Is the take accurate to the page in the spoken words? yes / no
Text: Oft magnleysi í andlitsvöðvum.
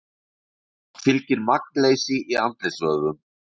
no